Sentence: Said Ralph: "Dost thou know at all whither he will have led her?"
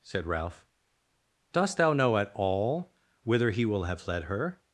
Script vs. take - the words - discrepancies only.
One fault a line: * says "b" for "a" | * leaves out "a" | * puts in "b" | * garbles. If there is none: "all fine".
all fine